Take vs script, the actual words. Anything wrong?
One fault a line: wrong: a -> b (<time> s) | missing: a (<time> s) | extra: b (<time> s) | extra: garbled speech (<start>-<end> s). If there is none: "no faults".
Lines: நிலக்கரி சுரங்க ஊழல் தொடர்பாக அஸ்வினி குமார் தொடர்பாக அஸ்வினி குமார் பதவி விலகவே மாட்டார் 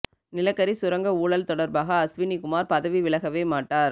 missing: தொடர்பாக அஸ்வினி குமார் (2.7 s)